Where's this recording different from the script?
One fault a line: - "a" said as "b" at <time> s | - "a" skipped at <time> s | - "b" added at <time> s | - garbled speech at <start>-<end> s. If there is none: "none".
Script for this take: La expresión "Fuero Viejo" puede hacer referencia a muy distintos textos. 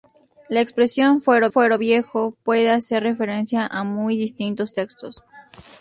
- "fuero" added at 1.5 s